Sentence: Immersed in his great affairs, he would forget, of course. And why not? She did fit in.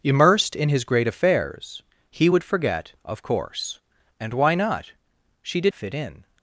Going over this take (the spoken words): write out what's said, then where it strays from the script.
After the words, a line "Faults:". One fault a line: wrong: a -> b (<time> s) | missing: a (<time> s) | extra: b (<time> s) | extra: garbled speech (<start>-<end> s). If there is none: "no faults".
Immersed in his great affairs, he would forget, of course. And why not? She did fit in.
Faults:
no faults